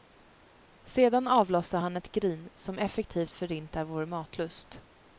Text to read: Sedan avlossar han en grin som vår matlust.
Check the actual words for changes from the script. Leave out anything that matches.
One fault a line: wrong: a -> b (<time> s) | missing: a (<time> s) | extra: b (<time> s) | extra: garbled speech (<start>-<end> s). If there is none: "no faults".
wrong: en -> ett (2.0 s)
extra: effektivt förintar (2.8 s)